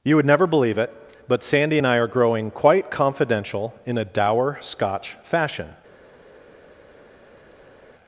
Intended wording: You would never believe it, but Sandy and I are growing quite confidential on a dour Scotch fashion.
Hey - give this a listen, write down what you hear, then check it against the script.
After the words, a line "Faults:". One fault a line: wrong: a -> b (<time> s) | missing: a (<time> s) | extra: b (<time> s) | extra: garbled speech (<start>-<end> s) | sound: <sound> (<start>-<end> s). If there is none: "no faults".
You would never believe it, but Sandy and I are growing quite confidential in a dour Scotch fashion.
Faults:
wrong: on -> in (3.8 s)